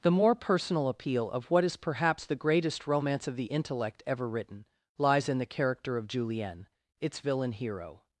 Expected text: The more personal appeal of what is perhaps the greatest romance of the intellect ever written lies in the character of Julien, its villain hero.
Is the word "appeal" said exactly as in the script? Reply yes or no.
yes